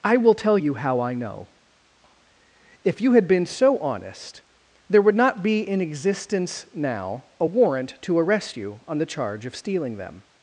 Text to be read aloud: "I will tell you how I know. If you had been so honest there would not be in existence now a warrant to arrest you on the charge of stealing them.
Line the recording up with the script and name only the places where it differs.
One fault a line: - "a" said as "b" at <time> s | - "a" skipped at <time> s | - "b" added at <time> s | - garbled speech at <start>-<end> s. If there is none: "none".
none